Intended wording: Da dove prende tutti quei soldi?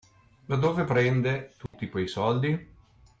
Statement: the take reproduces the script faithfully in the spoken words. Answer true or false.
true